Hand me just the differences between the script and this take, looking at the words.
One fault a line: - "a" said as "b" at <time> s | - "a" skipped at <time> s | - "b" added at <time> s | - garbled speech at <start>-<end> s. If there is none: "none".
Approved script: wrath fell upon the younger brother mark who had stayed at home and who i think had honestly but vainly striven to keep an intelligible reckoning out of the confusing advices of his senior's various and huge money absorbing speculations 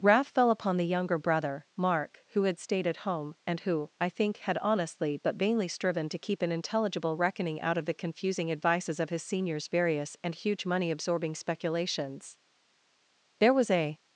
- "there was a" added at 13.4 s